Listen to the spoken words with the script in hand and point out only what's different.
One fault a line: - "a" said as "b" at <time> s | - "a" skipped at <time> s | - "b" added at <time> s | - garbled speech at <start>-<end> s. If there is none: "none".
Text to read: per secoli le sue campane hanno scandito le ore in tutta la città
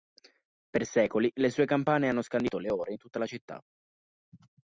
none